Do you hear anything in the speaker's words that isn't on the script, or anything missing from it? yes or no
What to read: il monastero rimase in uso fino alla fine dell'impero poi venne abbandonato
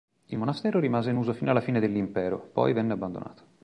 no